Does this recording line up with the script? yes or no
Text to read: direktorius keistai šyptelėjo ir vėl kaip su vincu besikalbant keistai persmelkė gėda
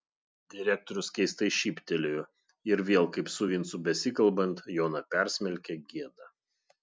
no